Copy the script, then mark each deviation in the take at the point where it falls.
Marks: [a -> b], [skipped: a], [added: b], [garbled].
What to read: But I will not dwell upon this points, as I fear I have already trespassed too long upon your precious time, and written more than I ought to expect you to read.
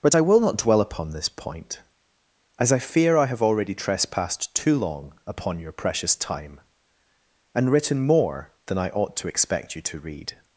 But I will not dwell upon this [points, -> point] as I fear I have already trespassed too long upon your precious time, and written more than I ought to expect you to read.